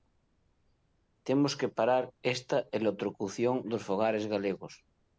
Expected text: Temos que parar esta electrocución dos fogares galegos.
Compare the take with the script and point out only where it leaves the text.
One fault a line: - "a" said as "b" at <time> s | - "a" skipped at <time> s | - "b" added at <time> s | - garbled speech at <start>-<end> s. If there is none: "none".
none